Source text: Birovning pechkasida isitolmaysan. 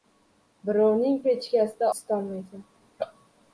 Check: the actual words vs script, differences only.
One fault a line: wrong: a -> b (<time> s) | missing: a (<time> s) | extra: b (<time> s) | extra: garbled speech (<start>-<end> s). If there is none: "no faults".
no faults